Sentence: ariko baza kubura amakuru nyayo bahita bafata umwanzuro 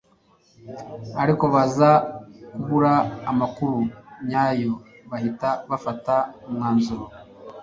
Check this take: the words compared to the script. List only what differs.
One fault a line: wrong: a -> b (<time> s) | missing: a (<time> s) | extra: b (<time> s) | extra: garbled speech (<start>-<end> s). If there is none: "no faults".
no faults